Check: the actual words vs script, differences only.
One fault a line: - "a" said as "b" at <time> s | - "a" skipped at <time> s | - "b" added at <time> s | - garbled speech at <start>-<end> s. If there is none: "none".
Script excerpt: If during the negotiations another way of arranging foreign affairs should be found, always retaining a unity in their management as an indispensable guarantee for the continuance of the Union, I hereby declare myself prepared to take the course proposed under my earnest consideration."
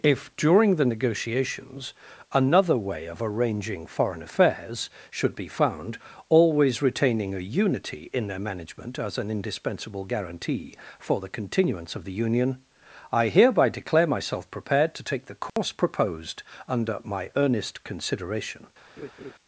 none